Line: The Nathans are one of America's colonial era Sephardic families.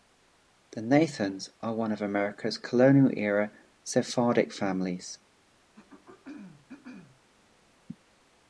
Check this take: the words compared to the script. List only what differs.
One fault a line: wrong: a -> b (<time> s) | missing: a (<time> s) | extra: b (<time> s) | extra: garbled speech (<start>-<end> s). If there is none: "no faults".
no faults